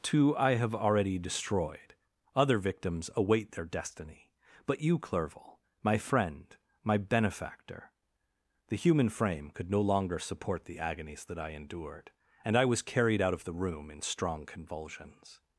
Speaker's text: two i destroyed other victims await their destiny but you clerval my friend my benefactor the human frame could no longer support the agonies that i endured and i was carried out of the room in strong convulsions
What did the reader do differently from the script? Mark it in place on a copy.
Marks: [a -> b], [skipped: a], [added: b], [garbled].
two i [added: have already] destroyed other victims await their destiny but you clerval my friend my benefactor the human frame could no longer support the agonies that i endured and i was carried out of the room in strong convulsions